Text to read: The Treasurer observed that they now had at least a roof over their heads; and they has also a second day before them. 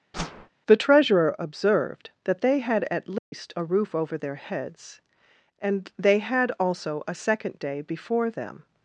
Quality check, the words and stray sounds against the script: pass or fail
fail